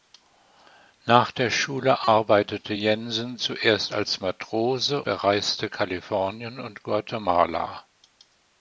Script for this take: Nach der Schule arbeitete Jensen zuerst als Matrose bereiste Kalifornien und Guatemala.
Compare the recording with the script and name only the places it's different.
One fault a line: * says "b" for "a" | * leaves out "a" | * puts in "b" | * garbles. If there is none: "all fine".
all fine